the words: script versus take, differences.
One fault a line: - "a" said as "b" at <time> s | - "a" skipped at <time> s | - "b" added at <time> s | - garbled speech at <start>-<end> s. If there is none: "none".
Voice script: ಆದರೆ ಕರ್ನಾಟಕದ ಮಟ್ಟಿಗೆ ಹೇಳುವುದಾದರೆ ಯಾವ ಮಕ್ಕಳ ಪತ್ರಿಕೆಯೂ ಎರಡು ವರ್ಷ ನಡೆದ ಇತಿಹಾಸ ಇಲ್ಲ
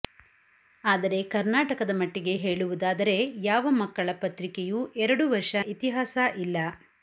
- "ನಡೆದ" skipped at 5.5 s